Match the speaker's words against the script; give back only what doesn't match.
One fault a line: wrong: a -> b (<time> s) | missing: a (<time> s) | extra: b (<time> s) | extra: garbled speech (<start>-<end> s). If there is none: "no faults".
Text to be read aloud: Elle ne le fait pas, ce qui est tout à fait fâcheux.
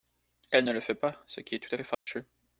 no faults